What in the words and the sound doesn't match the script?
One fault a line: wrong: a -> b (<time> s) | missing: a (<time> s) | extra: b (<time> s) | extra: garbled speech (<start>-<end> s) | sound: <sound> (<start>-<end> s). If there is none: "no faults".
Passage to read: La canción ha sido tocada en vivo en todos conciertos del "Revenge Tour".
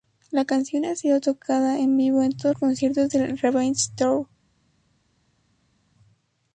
no faults